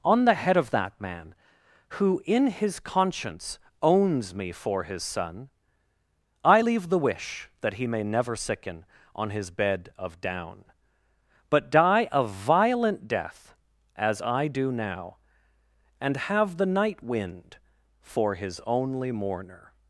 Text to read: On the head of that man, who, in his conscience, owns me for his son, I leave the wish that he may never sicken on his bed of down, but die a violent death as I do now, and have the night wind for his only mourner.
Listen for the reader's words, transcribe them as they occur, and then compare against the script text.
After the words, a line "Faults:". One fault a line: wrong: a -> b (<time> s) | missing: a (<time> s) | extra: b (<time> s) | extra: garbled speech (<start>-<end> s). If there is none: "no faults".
On the head of that man, who, in his conscience, owns me for his son, I leave the wish that he may never sicken on his bed of down, but die a violent death as I do now, and have the night wind for his only mourner.
Faults:
no faults